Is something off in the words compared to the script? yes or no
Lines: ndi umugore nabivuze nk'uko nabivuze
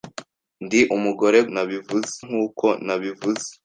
no